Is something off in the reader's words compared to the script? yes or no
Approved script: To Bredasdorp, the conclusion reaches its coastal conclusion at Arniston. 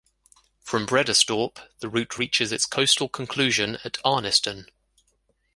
yes